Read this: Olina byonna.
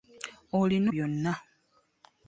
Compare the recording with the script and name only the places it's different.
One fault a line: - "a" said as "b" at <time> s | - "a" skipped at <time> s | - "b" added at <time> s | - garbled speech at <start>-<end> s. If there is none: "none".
none